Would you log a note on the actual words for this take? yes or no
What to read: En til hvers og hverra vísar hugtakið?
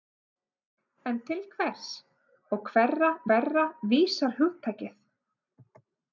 yes